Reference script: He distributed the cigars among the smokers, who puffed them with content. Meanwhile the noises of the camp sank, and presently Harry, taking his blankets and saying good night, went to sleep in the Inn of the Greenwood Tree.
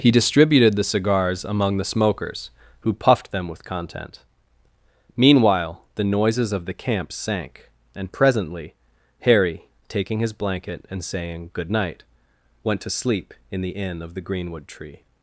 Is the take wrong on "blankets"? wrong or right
wrong